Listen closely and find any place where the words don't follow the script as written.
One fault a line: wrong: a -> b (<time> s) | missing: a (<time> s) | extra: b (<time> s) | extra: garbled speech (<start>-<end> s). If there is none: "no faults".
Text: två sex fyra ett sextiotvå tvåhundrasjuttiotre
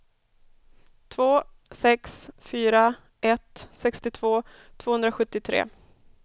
no faults